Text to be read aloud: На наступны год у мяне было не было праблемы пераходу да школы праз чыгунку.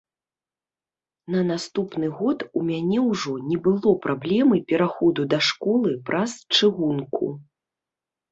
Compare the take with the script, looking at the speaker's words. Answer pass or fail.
fail